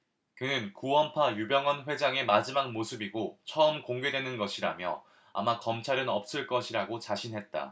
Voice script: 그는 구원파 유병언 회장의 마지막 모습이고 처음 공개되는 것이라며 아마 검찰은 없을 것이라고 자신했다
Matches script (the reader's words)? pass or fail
pass